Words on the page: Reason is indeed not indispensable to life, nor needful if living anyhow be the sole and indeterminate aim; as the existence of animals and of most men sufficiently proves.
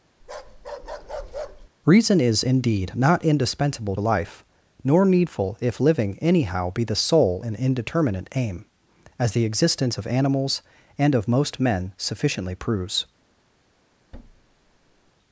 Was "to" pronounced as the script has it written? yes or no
no